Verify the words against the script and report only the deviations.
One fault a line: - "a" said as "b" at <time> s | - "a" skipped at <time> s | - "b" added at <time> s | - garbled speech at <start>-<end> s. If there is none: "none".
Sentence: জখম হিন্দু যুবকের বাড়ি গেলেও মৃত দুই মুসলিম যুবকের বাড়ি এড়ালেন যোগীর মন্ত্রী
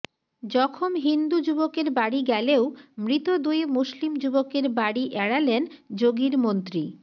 none